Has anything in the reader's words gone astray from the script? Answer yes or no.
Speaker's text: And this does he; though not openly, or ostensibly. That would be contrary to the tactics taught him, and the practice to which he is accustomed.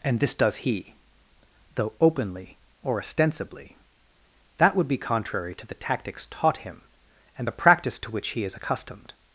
yes